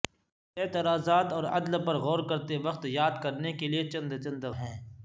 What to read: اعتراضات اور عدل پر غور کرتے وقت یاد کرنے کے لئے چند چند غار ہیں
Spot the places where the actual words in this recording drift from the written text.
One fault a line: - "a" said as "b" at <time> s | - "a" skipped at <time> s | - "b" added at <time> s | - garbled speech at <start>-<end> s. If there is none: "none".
- "غار" skipped at 4.5 s